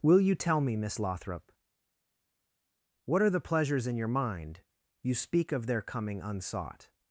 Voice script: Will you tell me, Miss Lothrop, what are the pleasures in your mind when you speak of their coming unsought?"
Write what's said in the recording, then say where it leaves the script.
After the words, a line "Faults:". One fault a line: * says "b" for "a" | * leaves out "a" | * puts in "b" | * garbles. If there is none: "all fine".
Will you tell me, Miss Lothrop, what are the pleasures in your mind you speak of their coming unsought?"
Faults:
* leaves out "when"